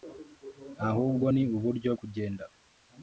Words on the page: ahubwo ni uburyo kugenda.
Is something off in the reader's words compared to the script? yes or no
no